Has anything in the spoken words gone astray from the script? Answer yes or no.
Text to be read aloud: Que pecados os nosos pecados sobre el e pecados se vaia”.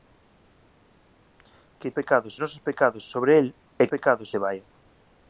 no